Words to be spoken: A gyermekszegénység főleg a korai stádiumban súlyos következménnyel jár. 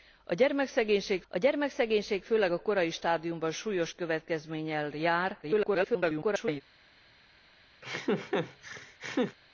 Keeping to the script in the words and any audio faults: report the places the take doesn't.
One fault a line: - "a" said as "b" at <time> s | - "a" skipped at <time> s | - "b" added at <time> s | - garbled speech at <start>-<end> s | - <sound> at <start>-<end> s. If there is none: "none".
- "a gyermekszegénység" added at 1.3 s
- garbled speech at 5.4-6.6 s
- laugh at 7.8-9.4 s